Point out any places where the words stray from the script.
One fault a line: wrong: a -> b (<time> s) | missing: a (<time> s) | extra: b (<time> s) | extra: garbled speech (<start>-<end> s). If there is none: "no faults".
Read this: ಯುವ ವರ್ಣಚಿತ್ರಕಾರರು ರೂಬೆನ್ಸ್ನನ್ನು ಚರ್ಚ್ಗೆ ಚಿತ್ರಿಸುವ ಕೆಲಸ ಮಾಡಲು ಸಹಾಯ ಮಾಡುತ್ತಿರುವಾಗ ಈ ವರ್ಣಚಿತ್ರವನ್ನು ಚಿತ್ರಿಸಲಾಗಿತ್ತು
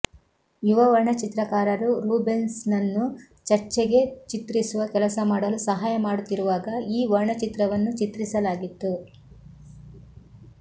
no faults